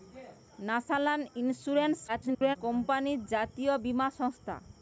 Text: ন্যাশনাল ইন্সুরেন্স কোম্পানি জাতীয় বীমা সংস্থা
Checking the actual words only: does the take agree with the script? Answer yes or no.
no